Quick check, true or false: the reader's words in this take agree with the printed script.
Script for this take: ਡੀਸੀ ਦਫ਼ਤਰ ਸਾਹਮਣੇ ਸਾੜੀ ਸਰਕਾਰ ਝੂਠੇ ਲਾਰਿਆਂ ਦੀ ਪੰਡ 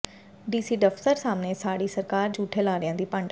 true